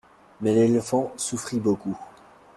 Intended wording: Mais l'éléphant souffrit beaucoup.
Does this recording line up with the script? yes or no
yes